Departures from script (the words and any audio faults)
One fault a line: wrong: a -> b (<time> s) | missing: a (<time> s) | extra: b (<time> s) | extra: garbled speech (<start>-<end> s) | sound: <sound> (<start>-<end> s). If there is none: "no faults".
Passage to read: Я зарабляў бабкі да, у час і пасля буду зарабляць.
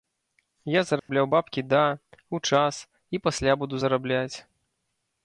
sound: dropout (1.0-1.1 s)